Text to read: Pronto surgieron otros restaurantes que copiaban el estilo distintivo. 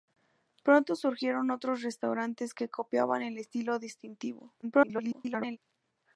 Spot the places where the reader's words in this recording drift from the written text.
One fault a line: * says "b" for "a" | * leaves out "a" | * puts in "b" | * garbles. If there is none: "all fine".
* garbles